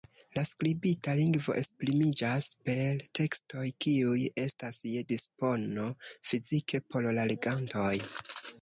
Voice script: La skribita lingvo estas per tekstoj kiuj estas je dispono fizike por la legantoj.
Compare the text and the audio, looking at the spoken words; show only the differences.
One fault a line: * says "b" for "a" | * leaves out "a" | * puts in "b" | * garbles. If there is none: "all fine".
* says "esprimiĝas" for "estas"